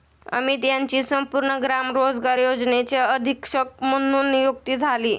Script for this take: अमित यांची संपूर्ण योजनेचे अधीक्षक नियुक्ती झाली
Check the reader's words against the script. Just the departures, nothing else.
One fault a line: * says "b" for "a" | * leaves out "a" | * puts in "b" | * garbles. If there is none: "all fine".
* puts in "ग्राम रोजगार"
* puts in "म्हणून"